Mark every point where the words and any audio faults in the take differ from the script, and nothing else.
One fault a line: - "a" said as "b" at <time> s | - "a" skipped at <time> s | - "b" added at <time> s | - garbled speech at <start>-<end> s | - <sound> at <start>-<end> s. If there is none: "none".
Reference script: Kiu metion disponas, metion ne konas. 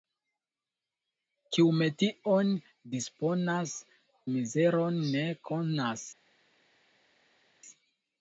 - "metion" said as "mizeron" at 4.3 s